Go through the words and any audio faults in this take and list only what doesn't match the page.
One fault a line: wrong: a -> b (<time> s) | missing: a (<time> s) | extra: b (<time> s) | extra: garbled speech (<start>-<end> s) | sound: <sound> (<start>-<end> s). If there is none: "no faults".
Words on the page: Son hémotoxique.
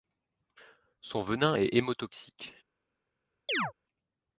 extra: venin est (1.2 s)
sound: chirp (3.5-3.7 s)